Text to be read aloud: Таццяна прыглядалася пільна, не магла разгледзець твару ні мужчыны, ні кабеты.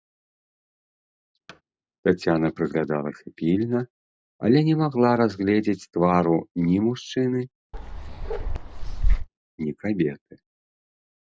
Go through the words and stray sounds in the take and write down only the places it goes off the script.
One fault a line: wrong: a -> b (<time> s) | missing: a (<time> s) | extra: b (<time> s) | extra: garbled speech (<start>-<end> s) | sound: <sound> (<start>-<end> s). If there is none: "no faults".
sound: thud (1.5-1.6 s)
extra: але (4.5 s)
sound: bark (7.7-9.3 s)